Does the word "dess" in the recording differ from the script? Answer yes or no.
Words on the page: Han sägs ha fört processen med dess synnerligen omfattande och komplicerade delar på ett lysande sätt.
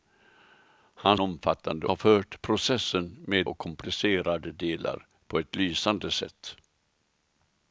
yes